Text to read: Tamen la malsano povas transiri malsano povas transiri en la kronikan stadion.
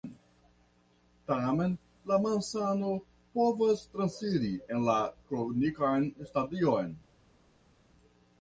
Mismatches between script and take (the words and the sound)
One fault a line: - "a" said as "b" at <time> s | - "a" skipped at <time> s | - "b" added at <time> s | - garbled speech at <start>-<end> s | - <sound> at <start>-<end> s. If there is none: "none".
- "malsano povas transiri" skipped at 4.5 s